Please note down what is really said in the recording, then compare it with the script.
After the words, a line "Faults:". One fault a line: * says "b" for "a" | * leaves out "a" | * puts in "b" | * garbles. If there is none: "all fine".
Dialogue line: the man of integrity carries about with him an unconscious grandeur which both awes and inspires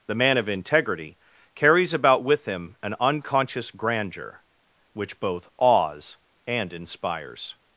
the man of integrity carries about with him an unconscious grandeur which both awes and inspires
Faults:
all fine